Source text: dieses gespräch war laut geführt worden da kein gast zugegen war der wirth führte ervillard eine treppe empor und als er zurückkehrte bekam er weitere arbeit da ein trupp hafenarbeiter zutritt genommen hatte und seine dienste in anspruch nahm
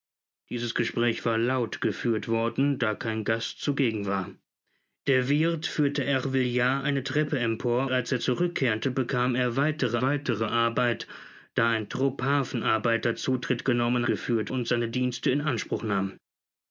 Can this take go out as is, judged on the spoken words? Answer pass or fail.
fail